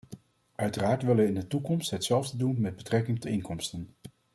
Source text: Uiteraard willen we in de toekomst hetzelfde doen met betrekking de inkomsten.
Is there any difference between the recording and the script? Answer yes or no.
no